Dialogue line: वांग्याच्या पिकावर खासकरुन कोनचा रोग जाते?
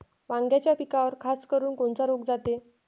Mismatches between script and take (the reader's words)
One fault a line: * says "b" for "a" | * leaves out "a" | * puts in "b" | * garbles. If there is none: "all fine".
all fine